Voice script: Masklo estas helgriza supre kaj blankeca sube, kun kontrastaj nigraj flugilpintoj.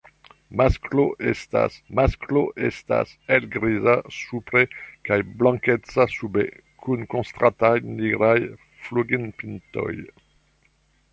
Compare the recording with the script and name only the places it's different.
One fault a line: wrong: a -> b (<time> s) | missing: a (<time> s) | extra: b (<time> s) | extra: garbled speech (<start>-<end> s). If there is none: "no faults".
extra: masklo estas (2.0 s)